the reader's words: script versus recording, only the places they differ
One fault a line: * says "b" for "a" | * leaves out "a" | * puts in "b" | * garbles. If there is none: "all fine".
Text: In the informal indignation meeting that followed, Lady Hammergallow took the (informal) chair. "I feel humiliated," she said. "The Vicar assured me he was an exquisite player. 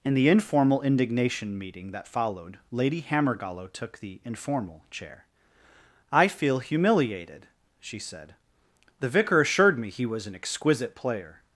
all fine